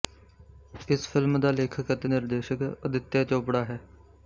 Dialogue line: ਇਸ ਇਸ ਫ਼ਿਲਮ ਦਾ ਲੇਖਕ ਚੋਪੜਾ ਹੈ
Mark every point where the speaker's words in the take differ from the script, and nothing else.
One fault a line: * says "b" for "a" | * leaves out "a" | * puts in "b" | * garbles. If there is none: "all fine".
* leaves out "ਇਸ"
* puts in "ਅਤੇ ਨਿਰਦੇਸ਼ਕ ਅਦਿੱਤਿਆ"